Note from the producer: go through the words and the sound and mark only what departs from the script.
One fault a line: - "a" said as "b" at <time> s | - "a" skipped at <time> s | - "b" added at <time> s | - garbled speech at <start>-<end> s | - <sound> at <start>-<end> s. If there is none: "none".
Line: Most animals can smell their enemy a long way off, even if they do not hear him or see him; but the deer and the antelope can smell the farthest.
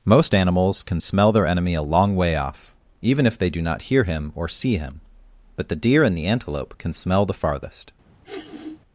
- sniff at 8.2-8.8 s